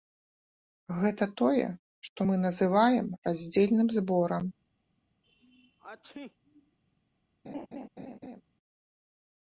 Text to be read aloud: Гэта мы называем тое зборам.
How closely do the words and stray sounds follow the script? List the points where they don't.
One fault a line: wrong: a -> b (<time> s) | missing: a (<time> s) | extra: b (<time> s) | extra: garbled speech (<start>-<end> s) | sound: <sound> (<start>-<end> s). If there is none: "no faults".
extra: тое што (1.4 s)
wrong: тое -> раздзельным (3.3 s)
sound: sneeze (5.2-6.8 s)
sound: laugh (7.4-8.4 s)